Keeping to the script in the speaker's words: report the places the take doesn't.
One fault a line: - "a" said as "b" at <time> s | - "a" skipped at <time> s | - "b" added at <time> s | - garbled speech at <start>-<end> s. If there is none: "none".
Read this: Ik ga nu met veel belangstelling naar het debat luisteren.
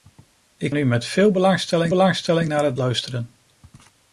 - "ga" skipped at 0.8 s
- "belangstelling" added at 1.9 s
- "debat" skipped at 2.7 s